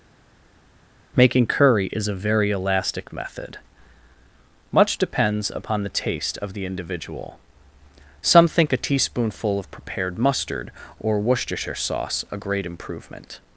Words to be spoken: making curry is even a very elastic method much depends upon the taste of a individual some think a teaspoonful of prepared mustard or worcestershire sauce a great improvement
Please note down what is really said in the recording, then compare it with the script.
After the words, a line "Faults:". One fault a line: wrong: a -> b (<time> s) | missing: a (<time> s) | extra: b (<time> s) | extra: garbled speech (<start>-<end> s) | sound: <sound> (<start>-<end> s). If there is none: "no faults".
making curry is a very elastic method much depends upon the taste of the individual some think a teaspoonful of prepared mustard or worcestershire sauce a great improvement
Faults:
missing: even (2.1 s)
wrong: a -> the (6.5 s)